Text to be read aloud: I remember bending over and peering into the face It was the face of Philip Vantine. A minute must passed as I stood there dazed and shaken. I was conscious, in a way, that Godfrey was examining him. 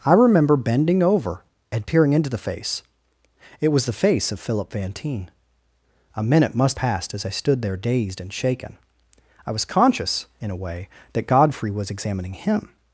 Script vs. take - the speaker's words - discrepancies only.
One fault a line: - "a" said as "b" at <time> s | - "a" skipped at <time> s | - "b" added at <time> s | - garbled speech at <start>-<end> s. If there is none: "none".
none